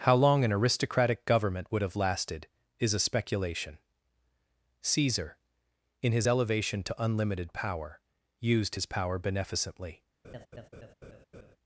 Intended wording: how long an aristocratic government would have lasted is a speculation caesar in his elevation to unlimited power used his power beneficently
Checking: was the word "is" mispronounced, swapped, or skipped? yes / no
no